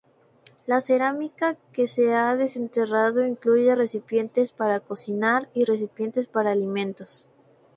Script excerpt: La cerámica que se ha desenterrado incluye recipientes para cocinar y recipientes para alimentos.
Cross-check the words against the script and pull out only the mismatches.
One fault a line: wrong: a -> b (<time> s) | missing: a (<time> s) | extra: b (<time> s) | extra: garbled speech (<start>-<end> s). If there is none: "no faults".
no faults